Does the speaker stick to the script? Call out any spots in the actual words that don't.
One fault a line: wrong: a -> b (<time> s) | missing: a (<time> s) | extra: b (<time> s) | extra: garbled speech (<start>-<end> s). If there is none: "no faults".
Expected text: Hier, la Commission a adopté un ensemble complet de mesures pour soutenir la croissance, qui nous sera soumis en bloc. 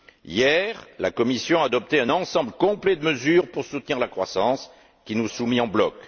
missing: sera (5.3 s)